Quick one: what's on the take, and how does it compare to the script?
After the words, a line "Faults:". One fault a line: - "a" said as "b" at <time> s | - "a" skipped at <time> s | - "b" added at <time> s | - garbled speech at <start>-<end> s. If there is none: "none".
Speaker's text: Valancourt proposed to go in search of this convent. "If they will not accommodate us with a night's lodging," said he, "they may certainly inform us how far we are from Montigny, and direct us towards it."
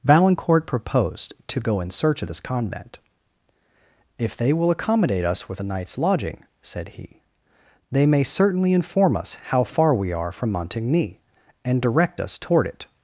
Valancourt proposed to go in search of this convent. "If they will accommodate us with a night's lodging," said he, "they may certainly inform us how far we are from Montigny, and direct us toward it."
Faults:
- "not" skipped at 4.7 s
- "towards" said as "toward" at 12.4 s